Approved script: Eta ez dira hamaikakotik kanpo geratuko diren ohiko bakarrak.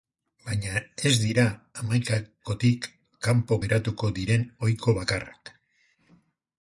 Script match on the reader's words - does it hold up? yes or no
no